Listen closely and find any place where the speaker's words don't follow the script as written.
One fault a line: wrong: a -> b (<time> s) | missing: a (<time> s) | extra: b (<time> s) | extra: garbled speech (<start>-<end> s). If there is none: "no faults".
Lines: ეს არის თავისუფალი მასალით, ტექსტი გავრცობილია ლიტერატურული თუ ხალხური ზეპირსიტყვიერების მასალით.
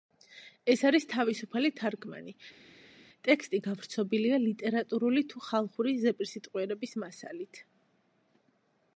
wrong: მასალით -> თარგმანი (1.8 s)